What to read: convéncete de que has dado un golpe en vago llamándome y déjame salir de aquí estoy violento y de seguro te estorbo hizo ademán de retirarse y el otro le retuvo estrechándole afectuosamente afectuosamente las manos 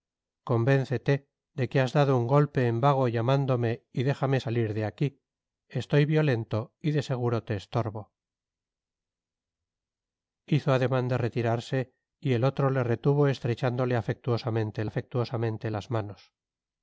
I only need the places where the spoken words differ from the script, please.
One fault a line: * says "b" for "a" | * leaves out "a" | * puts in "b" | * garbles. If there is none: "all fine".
all fine